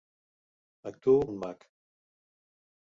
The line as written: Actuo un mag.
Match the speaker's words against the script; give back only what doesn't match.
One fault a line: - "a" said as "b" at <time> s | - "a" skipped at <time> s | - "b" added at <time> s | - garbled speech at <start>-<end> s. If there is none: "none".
none